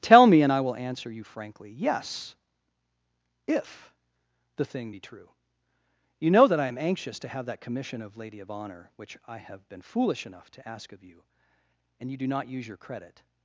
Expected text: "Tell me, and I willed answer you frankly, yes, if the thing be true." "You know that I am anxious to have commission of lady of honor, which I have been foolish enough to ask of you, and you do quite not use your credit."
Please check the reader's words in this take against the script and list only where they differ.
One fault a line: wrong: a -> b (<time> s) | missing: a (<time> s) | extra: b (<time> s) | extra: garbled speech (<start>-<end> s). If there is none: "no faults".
wrong: willed -> will (0.6 s)
extra: that (7.5 s)
missing: quite (12.3 s)